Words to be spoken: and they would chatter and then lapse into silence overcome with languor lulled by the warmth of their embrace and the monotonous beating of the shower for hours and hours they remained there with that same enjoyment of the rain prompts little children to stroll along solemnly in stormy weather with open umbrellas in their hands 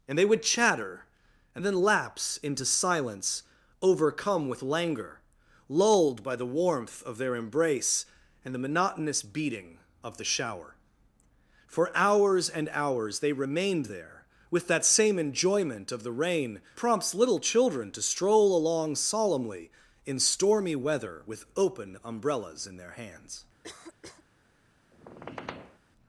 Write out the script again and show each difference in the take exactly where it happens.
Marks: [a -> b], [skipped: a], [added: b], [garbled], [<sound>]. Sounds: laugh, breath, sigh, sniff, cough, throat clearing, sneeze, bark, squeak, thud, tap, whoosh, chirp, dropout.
and they would chatter and then lapse into silence overcome with languor lulled by the warmth of their embrace and the monotonous beating of the shower for hours and hours they remained there with that same enjoyment of the rain prompts little children to stroll along solemnly in stormy weather with open umbrellas in their hands [cough] [squeak]